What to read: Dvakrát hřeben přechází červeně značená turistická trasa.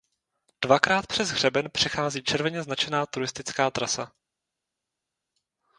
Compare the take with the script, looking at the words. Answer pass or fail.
fail